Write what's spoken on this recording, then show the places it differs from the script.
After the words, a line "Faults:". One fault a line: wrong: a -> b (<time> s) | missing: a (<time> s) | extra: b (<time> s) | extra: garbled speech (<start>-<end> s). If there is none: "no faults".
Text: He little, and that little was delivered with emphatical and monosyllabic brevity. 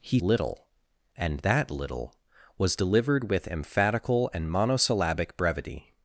He little, and that little was delivered with emphatical and monosyllabic brevity.
Faults:
no faults